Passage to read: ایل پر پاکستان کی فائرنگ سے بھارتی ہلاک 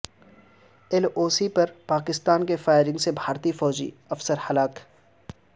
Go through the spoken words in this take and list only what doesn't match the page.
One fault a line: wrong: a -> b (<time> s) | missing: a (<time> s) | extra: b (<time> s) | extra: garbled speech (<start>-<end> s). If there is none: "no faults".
extra: او سی (1.1 s)
extra: فوجی افسر (3.5 s)